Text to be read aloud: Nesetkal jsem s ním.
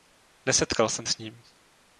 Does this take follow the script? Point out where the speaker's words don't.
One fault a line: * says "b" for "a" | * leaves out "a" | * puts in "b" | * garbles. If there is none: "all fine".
all fine